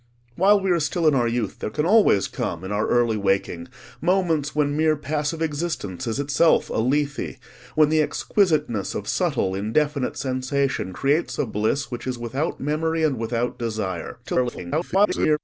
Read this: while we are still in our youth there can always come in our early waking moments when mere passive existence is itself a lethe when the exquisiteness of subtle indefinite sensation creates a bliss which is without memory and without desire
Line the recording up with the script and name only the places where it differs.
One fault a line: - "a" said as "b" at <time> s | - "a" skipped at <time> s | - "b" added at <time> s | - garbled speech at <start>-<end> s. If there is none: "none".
- garbled speech at 14.2-15.4 s